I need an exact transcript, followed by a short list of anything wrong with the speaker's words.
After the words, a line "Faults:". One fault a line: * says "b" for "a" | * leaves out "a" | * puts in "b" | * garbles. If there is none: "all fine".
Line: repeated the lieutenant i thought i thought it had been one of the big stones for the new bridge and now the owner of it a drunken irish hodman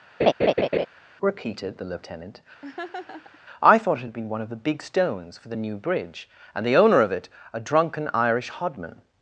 repeated the lieutenant i thought it had been one of the big stones for the new bridge and the owner of it a drunken irish hodman
Faults:
* leaves out "i thought"
* leaves out "now"